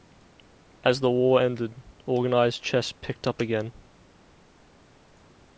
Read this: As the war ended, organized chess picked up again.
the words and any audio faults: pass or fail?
pass